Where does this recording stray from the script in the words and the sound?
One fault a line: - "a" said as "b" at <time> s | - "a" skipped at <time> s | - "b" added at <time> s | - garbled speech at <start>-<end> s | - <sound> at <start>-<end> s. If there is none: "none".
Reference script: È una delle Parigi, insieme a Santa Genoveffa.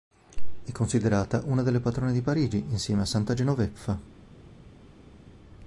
- "considerata" added at 0.7 s
- "patrone di" added at 1.8 s